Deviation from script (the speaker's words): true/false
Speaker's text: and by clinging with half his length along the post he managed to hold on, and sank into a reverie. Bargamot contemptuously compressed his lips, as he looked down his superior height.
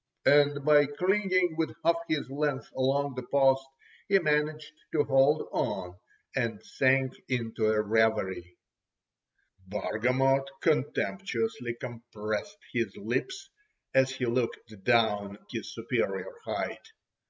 false